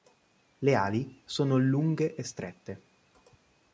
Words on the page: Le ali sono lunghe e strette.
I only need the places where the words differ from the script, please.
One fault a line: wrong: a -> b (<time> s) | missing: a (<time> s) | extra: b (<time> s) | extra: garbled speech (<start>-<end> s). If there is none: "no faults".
no faults